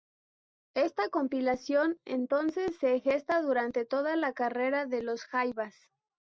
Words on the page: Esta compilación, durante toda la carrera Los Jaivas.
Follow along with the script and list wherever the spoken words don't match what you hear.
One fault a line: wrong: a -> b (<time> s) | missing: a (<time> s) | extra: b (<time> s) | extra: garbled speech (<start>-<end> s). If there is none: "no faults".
extra: entonces se gesta (2.0 s)
extra: de (4.9 s)